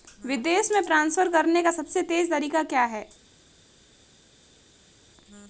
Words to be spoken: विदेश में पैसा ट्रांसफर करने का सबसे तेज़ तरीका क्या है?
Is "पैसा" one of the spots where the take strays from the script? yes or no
yes